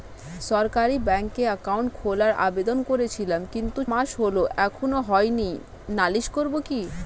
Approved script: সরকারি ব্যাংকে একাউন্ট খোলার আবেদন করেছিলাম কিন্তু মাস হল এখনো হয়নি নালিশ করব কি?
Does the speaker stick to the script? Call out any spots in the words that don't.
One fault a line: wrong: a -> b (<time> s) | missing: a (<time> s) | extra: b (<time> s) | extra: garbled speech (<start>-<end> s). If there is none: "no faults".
no faults